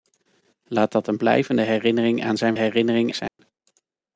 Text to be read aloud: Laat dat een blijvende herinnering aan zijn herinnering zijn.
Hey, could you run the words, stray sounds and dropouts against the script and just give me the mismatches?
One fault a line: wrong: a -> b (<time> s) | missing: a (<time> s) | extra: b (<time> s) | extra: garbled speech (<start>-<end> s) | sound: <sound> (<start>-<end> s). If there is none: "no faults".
sound: dropout (3.3-3.4 s)